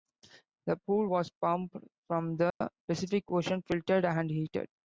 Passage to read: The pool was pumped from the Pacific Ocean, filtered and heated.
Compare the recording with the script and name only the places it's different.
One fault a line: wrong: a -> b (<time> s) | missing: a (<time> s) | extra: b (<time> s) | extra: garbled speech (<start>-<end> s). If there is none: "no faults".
no faults